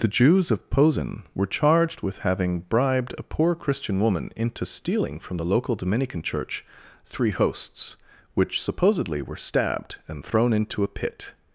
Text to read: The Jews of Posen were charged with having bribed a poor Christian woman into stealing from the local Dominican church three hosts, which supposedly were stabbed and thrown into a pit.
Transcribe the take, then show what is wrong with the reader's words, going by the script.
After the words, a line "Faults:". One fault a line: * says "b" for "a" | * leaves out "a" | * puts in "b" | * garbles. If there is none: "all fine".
The Jews of Posen were charged with having bribed a poor Christian woman into stealing from the local Dominican church three hosts, which supposedly were stabbed and thrown into a pit.
Faults:
all fine